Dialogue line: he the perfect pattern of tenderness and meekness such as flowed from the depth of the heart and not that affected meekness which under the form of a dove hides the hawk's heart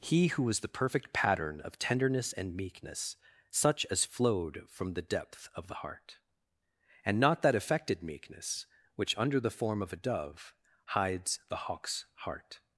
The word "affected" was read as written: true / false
true